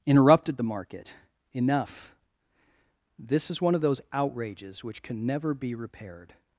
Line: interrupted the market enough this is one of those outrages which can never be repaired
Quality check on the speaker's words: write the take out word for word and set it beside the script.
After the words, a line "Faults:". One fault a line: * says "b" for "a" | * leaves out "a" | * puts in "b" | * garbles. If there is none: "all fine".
interrupted the market enough this is one of those outrages which can never be repaired
Faults:
all fine